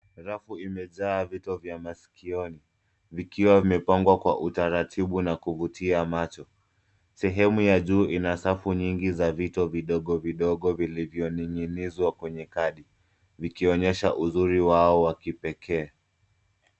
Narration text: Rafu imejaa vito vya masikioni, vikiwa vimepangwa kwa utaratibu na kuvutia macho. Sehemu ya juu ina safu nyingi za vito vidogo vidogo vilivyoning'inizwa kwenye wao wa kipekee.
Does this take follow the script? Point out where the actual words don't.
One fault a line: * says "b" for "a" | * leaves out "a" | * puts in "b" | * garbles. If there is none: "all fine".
* puts in "kadi vikionyesha uzuri"